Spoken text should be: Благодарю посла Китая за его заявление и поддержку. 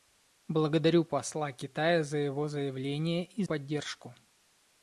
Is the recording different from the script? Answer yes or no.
no